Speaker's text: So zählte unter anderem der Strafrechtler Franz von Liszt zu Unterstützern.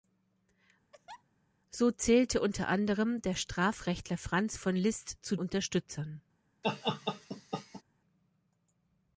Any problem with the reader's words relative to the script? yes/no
no